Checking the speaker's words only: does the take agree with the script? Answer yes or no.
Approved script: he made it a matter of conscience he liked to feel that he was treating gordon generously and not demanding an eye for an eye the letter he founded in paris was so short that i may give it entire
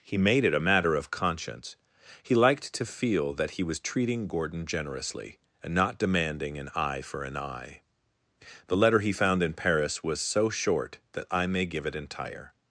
no